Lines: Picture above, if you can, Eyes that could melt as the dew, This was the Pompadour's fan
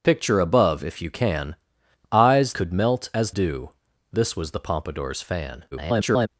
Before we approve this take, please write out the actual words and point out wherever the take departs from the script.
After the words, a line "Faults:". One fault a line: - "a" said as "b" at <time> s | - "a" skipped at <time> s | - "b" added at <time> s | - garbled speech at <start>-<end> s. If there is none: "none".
Picture above, if you can, Eyes could melt as dew, This was the Pompadour's fan [garbled]
Faults:
- "that" skipped at 2.5 s
- "the" skipped at 3.3 s
- garbled speech at 5.7-6.3 s